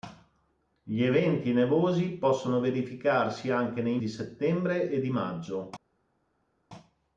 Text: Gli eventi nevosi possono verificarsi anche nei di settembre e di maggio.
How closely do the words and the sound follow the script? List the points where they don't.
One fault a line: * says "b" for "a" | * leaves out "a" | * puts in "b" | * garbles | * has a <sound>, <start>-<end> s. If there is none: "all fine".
all fine